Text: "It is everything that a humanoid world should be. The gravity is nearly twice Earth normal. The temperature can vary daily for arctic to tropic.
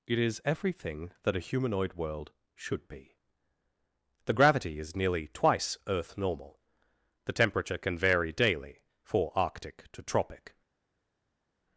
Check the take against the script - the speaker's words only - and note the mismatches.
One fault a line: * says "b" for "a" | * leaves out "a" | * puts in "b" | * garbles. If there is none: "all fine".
all fine